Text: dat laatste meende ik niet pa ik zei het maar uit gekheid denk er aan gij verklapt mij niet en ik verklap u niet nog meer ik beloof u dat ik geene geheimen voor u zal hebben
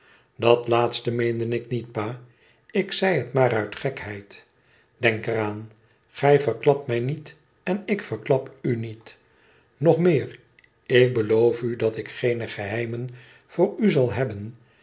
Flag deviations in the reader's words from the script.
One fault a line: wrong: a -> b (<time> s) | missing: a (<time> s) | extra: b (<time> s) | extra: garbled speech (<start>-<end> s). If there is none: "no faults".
no faults